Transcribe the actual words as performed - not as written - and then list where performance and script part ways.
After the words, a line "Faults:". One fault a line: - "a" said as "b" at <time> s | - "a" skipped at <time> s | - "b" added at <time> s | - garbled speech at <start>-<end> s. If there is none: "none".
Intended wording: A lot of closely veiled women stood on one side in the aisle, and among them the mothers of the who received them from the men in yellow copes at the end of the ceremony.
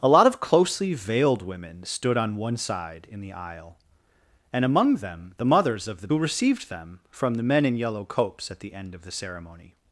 A lot of closely veiled women stood on one side in the aisle, and among them the mothers of the who received them from the men in yellow copes at the end of the ceremony.
Faults:
none